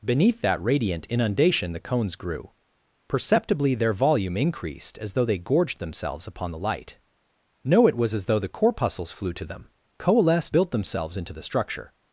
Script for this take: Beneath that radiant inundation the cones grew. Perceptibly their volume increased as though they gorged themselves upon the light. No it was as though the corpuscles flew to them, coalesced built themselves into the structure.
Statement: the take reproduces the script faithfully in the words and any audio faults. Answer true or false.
true